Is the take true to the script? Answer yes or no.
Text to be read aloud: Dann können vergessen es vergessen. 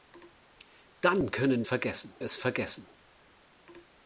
yes